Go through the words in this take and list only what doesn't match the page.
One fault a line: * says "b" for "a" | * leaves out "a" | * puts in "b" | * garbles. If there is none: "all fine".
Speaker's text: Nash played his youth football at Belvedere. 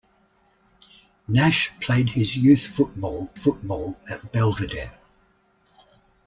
* puts in "football"